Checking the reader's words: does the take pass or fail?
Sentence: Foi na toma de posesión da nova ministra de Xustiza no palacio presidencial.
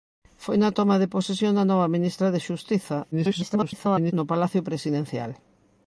fail